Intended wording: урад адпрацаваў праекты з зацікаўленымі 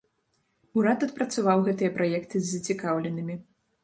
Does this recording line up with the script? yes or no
no